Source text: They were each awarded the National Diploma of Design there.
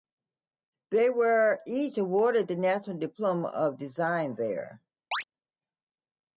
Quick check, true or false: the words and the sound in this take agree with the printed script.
false